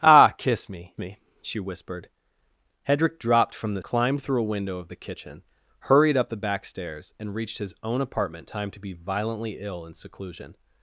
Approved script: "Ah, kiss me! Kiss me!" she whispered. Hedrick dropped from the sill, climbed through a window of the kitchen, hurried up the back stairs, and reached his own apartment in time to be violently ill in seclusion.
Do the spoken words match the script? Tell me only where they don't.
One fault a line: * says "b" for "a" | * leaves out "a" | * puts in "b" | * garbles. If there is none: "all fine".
* leaves out "Kiss"
* leaves out "sill"
* leaves out "in"